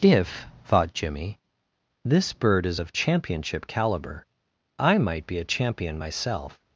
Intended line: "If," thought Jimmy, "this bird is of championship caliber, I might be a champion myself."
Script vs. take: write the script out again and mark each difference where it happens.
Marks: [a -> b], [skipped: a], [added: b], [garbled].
"If," thought Jimmy, "this bird is of championship caliber, I might be a champion myself."